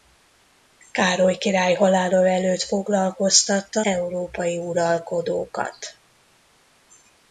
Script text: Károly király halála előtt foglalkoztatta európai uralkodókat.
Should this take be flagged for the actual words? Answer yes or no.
no